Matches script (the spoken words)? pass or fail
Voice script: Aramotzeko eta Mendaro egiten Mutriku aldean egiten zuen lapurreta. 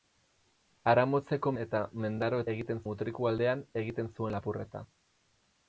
pass